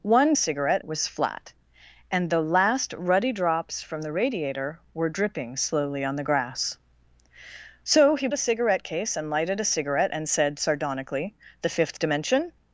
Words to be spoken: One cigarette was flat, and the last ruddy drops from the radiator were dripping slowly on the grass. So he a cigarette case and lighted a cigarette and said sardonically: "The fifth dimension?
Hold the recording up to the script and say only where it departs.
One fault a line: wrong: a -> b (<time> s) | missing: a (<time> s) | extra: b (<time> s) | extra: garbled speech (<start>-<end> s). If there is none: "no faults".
no faults